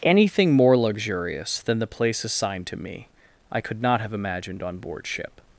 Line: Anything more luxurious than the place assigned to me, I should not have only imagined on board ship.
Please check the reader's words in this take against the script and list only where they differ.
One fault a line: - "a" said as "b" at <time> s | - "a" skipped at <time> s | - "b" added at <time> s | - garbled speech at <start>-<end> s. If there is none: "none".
- "should" said as "could" at 3.6 s
- "only" skipped at 4.1 s